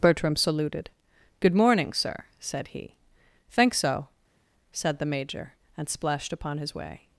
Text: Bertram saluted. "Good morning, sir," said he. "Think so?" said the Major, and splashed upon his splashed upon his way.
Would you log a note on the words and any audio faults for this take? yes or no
yes